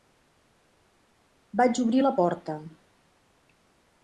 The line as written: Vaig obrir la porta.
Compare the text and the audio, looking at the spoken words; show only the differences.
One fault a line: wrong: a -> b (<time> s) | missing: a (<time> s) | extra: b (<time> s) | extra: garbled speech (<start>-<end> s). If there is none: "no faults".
no faults